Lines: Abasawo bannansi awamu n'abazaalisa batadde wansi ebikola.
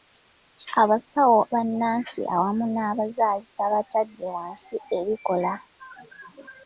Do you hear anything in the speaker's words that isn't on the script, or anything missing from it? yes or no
no